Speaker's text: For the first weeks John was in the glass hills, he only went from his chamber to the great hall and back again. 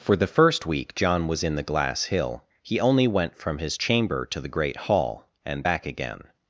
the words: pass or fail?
fail